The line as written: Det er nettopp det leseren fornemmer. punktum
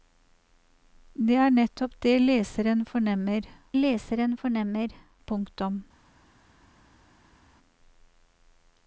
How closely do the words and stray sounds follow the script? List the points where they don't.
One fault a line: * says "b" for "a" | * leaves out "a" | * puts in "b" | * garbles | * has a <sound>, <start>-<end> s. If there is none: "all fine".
* puts in "leseren fornemmer"